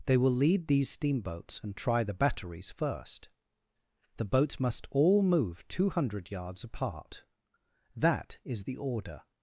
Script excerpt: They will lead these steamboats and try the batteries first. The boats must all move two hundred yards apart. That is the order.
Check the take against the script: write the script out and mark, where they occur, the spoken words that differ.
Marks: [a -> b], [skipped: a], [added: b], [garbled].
They will lead these steamboats and try the batteries first. The boats must all move two hundred yards apart. That is the order.